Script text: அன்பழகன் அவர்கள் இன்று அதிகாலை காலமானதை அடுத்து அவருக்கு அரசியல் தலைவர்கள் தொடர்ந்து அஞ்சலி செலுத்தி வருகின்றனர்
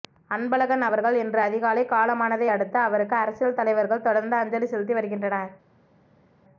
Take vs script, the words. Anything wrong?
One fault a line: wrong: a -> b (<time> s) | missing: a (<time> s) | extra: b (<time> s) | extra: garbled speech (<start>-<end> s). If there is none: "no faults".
no faults